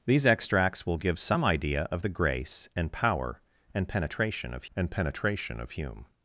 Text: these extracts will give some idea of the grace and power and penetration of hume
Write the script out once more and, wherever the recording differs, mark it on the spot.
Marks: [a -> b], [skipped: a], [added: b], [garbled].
these extracts will give some idea of the grace and power and penetration of [added: and penetration of] hume